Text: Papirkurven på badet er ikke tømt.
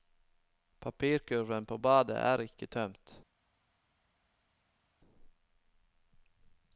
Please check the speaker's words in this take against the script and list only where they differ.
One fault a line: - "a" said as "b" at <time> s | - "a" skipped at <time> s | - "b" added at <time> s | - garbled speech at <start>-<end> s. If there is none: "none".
none